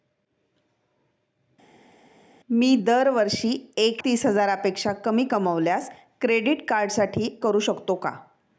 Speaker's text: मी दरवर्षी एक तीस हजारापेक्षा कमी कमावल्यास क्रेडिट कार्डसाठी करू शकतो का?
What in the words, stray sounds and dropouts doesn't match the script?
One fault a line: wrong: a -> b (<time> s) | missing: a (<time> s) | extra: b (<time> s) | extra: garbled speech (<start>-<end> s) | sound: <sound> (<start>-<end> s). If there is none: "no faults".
no faults